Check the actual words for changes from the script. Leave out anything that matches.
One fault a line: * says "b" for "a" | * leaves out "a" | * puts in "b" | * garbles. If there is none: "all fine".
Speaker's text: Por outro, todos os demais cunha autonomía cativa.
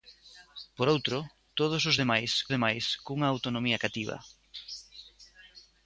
* puts in "demais"